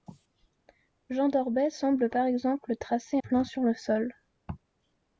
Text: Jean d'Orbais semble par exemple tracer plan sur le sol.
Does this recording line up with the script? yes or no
yes